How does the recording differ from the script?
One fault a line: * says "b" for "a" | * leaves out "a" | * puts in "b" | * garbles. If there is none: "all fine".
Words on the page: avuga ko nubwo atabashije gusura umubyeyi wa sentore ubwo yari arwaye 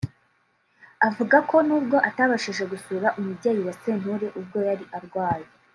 all fine